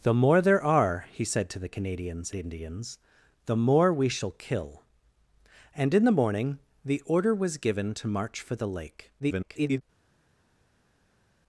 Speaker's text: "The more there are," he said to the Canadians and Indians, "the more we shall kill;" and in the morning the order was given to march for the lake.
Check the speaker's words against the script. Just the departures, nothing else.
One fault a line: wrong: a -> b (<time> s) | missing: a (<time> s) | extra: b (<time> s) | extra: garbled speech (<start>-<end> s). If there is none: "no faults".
missing: and (2.3 s)
extra: garbled speech (9.2-9.8 s)